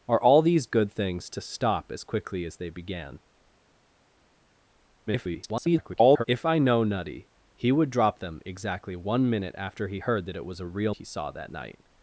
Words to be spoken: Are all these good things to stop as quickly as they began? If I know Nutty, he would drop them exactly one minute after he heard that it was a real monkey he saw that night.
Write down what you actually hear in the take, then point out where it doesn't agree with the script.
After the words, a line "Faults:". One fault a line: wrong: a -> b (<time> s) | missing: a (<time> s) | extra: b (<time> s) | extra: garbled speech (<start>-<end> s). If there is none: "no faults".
Are all these good things to stop as quickly as they began? [garbled] If I know Nutty, he would drop them exactly one minute after he heard that it was a real he saw that night.
Faults:
extra: garbled speech (5.1-6.2 s)
missing: monkey (10.9 s)